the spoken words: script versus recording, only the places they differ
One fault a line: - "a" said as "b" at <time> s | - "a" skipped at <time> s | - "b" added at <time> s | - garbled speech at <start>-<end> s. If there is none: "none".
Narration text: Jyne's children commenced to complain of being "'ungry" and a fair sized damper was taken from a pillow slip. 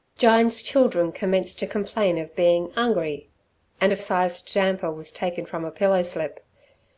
- "fair" skipped at 4.0 s